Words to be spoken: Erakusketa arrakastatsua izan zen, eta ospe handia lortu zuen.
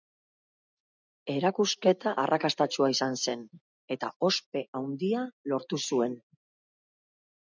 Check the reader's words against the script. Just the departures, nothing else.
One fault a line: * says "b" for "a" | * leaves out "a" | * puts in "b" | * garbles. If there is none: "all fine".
all fine